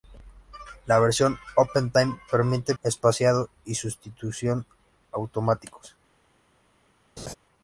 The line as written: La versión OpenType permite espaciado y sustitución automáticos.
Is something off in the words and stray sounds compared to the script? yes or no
yes